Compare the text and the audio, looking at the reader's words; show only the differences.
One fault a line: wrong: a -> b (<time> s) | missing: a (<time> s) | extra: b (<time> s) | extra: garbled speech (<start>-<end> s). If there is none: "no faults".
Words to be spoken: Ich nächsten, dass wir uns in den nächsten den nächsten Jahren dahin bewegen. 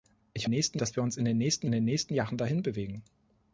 no faults